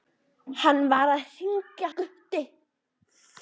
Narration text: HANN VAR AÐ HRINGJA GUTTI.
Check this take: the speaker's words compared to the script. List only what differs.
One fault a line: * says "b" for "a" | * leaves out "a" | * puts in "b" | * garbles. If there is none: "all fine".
all fine